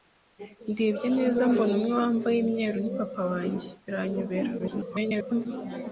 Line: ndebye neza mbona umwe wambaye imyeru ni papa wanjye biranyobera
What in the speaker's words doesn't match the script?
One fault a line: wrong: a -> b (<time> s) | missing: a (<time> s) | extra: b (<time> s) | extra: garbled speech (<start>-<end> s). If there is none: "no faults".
extra: garbled speech (4.6-5.5 s)